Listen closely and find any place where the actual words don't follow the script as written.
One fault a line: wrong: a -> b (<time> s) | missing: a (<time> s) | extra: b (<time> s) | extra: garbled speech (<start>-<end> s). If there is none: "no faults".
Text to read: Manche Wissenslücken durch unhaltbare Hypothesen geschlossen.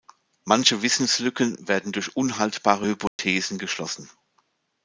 extra: werden (1.7 s)